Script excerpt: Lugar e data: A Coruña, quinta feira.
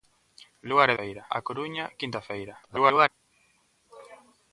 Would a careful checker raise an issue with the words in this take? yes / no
yes